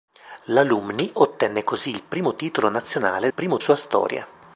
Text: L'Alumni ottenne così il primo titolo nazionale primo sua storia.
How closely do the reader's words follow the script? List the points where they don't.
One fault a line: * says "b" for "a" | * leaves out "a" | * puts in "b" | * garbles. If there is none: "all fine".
all fine